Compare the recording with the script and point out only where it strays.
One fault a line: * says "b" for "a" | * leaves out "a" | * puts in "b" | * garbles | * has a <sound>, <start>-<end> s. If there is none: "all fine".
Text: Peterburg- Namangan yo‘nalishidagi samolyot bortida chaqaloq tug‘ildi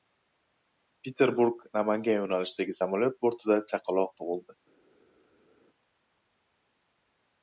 all fine